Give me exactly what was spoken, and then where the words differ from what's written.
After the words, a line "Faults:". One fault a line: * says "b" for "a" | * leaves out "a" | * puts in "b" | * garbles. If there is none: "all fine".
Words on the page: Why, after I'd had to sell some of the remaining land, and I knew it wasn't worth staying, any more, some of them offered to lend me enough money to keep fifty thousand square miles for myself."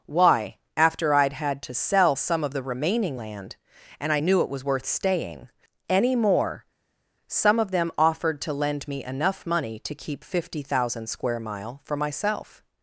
Why, after I'd had to sell some of the remaining land, and I knew it was worth staying, any more, some of them offered to lend me enough money to keep fifty thousand square mile for myself."
Faults:
* says "was" for "wasn't"
* says "mile" for "miles"